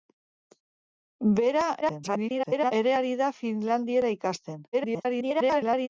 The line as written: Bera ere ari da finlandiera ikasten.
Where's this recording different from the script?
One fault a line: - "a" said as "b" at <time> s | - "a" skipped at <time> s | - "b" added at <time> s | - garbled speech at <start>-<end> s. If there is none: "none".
- garbled speech at 1.8-2.7 s
- garbled speech at 4.7-5.9 s